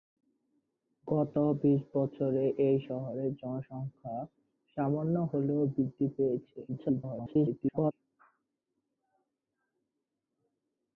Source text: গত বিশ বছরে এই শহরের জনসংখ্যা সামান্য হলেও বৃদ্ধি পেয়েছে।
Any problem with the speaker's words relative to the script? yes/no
yes